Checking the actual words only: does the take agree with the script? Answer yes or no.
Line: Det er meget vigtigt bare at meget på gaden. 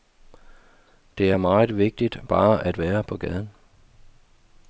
no